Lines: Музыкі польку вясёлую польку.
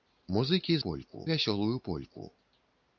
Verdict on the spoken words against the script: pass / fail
pass